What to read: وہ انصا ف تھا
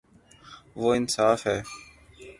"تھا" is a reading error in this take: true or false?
true